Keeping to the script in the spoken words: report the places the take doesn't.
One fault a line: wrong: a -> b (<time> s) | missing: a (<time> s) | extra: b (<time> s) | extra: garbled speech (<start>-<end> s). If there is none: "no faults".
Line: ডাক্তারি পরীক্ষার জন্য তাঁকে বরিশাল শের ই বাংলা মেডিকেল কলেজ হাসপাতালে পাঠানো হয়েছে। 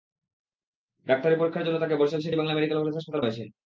missing: পাঠানো (3.2 s)